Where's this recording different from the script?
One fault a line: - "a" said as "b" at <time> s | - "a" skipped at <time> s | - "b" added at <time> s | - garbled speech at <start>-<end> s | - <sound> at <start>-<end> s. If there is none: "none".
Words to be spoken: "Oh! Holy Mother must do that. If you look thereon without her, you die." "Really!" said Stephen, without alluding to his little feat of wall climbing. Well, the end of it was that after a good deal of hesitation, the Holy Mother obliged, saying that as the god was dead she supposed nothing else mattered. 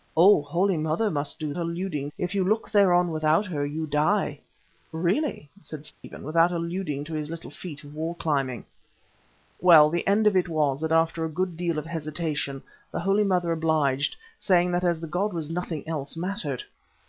- "that" said as "alluding" at 1.6 s
- dropout at 5.9-6.0 s
- "dead she supposed" skipped at 15.5 s